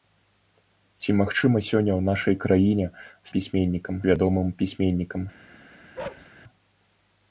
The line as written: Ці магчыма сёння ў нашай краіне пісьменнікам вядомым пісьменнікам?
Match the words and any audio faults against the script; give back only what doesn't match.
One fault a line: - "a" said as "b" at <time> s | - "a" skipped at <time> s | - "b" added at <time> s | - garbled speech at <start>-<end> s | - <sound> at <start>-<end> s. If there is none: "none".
- bark at 6.0-6.3 s